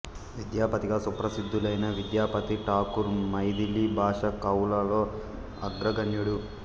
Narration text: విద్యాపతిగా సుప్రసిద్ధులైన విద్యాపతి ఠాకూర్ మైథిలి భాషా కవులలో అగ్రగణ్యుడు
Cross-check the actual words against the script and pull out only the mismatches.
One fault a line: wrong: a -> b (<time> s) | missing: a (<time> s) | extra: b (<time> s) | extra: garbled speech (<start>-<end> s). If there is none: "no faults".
no faults